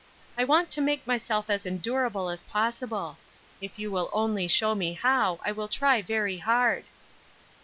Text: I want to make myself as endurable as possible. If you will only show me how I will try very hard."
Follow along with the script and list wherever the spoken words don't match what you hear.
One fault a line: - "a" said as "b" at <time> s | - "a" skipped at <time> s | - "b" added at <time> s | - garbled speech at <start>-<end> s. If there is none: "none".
none